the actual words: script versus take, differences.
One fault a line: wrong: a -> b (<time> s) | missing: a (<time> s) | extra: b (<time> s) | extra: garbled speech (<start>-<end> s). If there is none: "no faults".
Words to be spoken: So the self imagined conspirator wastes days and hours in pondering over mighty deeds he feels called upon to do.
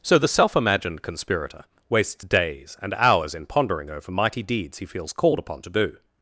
no faults